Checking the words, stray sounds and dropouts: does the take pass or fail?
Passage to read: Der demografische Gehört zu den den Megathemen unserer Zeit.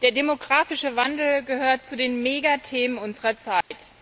fail